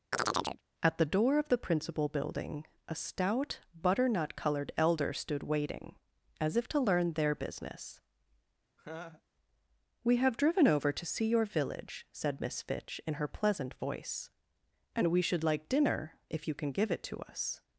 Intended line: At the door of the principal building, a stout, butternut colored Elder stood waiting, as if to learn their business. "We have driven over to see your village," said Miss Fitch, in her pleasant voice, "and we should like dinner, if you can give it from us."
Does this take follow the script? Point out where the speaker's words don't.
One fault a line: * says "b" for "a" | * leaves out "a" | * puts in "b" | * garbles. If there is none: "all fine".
* says "to" for "from"